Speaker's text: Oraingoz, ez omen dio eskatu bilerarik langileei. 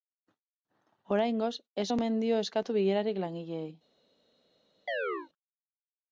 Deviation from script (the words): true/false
false